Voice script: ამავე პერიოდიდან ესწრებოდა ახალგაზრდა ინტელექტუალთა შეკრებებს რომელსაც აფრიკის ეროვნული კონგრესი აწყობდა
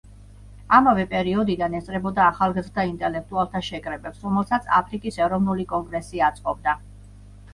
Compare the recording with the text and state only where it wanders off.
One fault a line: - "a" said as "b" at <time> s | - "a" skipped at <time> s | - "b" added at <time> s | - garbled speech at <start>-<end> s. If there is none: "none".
none